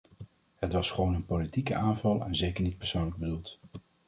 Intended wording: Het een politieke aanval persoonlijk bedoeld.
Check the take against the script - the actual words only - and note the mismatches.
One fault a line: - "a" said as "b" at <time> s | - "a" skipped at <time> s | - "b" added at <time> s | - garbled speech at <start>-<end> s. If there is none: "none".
- "was gewoon" added at 0.7 s
- "en zeker niet" added at 2.2 s